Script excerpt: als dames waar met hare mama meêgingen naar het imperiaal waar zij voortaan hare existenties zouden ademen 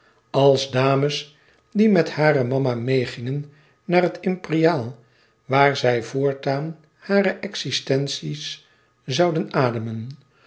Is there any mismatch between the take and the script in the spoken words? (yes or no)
yes